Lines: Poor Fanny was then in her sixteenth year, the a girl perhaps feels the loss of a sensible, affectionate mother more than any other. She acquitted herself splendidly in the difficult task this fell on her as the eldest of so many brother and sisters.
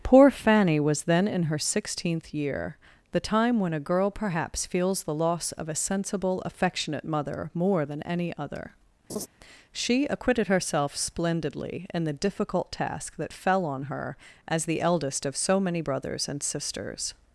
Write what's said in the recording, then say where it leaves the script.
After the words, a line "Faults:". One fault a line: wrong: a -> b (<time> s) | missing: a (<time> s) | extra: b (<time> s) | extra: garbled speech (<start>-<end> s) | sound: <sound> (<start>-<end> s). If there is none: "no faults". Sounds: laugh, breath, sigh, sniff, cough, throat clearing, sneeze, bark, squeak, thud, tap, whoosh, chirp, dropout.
Poor Fanny was then in her sixteenth year, the time when a girl perhaps feels the loss of a sensible, affectionate mother more than any other. She acquitted herself splendidly in the difficult task that fell on her as the eldest of so many brothers and sisters.
Faults:
extra: time when (3.2 s)
sound: laugh (9.1-9.3 s)
wrong: this -> that (13.2 s)
wrong: brother -> brothers (15.8 s)